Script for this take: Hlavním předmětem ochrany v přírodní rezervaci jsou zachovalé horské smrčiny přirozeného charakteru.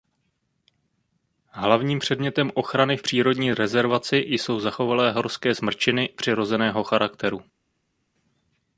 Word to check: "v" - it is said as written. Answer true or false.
true